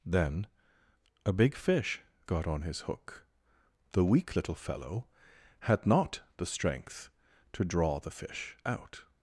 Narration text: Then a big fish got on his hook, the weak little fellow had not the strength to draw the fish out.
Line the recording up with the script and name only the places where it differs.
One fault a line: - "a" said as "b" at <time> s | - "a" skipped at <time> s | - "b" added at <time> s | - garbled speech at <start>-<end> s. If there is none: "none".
none